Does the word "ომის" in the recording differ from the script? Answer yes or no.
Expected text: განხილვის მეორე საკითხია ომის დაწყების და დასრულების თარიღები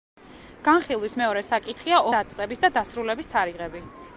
yes